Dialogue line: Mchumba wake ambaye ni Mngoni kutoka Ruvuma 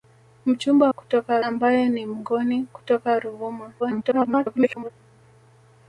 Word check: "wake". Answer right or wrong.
wrong